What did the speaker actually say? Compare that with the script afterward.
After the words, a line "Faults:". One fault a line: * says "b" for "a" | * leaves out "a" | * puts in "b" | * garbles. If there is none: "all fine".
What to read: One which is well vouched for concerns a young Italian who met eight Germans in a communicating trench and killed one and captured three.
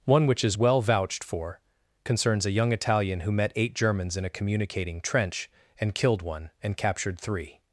One which is well vouched for concerns a young Italian who met eight Germans in a communicating trench and killed one and captured three.
Faults:
all fine